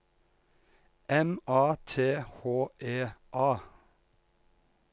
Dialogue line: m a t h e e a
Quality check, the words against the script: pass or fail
fail